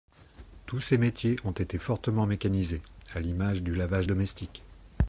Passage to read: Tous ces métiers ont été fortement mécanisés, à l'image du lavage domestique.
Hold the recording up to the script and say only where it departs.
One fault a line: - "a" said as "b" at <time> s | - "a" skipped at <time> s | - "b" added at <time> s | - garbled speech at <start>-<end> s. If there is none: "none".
none